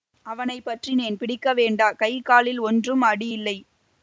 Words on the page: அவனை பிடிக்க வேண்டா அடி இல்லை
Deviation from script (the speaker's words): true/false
true